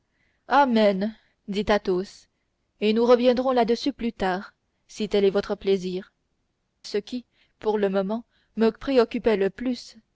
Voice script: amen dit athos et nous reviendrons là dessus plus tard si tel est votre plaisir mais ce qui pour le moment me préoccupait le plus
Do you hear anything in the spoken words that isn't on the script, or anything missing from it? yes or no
yes